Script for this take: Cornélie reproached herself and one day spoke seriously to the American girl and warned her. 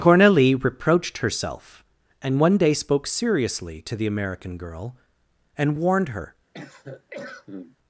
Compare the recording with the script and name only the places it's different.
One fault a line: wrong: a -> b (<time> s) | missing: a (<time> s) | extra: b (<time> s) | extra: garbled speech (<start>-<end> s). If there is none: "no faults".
no faults